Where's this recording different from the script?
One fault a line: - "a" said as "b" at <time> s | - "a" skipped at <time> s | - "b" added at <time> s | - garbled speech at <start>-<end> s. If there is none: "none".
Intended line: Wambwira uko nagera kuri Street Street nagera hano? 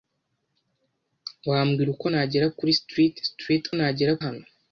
none